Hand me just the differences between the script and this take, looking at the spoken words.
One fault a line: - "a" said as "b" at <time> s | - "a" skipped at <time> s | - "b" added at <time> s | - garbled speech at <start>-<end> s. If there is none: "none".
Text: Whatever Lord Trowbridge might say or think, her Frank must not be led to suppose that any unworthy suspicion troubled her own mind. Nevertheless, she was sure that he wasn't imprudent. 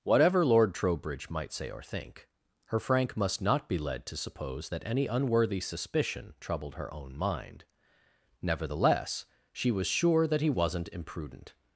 none